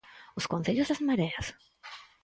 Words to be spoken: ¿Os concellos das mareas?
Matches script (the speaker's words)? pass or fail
pass